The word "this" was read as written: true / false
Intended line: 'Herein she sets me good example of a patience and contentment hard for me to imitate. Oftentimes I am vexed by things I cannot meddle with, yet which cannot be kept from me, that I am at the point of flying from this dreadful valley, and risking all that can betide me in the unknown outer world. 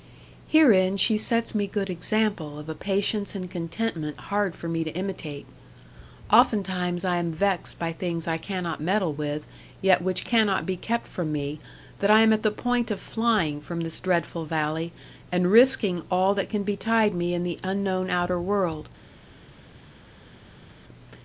true